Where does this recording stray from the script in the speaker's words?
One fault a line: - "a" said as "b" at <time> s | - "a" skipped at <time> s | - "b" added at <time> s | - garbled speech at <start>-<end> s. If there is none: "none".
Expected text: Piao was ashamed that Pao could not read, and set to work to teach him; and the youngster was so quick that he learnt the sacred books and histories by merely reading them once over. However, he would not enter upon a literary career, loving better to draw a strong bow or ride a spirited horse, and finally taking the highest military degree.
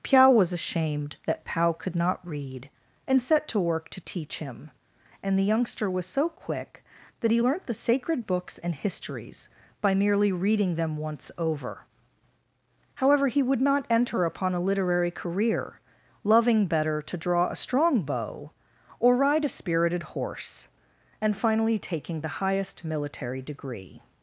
none